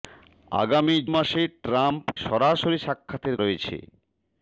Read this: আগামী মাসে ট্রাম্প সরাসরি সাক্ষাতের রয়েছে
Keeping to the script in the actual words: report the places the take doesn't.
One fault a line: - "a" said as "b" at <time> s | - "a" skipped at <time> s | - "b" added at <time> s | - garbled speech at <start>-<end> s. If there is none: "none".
none